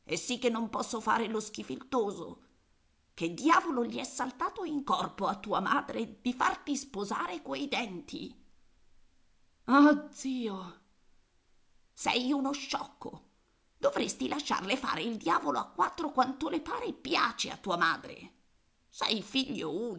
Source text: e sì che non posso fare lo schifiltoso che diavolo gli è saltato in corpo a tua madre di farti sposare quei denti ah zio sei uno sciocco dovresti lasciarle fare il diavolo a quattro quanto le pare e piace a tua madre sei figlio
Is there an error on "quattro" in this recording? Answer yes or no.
no